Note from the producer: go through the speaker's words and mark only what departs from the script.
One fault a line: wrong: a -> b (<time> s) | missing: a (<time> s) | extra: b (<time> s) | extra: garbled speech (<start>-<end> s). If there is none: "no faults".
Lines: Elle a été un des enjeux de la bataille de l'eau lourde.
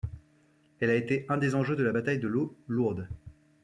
no faults